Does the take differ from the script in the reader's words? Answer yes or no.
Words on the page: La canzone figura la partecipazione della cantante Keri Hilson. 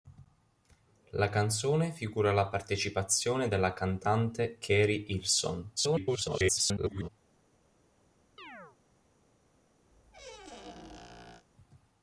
yes